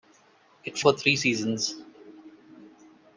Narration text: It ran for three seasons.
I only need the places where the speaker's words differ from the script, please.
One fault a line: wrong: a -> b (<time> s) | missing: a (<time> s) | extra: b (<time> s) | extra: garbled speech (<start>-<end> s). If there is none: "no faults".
missing: ran (0.8 s)